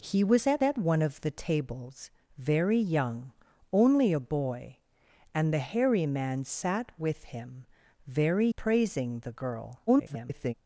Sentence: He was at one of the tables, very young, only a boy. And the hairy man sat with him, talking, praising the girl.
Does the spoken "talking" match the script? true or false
false